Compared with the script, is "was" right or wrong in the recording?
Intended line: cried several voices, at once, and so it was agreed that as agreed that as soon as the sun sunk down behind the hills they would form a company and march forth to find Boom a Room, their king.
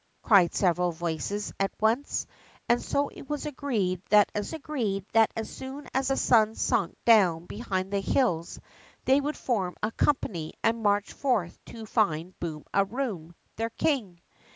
right